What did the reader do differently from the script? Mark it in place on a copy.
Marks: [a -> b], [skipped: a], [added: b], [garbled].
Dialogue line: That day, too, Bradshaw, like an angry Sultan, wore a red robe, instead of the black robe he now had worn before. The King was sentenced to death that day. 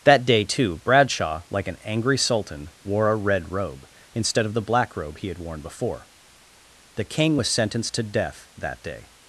That day, too, Bradshaw, like an angry Sultan, wore a red robe, instead of the black robe he [skipped: now] had worn before. The King was sentenced to death that day.